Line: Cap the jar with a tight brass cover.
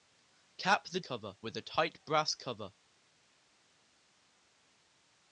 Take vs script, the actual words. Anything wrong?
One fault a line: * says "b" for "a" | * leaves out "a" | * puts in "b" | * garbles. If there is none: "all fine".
* says "cover" for "jar"